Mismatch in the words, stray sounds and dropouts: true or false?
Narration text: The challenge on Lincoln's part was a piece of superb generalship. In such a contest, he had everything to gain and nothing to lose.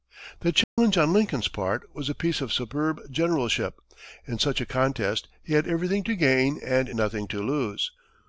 true